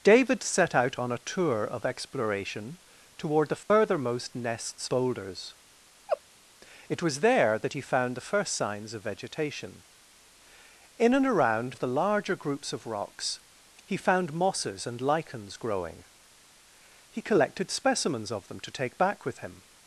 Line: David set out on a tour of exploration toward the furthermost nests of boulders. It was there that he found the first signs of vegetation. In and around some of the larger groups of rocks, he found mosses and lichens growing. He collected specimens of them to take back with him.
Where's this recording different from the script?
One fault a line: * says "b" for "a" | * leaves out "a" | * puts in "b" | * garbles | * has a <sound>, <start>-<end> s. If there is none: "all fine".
* has a dropout, 3.6-3.7 s
* leaves out "of"
* has a laugh, 6.1-6.2 s
* leaves out "some"